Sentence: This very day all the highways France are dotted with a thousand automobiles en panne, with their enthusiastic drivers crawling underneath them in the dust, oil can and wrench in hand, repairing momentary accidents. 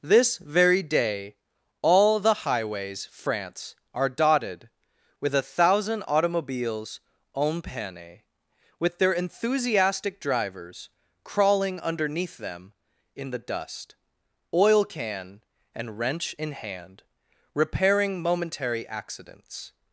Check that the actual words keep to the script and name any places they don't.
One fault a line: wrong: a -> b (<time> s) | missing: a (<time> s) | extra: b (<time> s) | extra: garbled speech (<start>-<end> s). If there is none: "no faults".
no faults